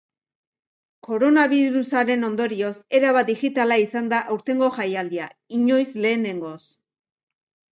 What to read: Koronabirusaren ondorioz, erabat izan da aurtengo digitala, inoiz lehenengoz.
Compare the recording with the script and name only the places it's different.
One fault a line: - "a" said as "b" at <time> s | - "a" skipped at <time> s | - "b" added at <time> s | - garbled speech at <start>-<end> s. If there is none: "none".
- "digitala" added at 3.3 s
- "digitala" said as "jaialdia" at 4.8 s